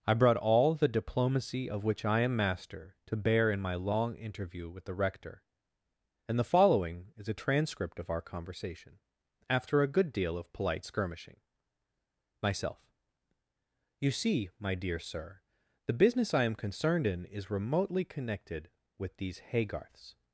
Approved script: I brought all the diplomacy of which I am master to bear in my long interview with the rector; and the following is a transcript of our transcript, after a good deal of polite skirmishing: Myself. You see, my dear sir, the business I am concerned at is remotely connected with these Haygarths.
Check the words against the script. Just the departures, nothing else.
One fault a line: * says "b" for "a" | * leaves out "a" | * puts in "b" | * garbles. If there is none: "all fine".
* says "conversation" for "transcript"
* says "in" for "at"